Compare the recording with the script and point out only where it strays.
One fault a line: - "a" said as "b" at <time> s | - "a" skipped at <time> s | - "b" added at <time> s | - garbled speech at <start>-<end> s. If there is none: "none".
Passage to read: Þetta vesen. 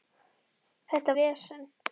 none